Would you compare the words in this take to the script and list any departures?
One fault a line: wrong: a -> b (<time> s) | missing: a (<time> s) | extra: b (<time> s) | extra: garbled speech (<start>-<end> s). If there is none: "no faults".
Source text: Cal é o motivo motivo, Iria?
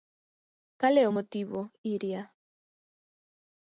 missing: motivo (1.6 s)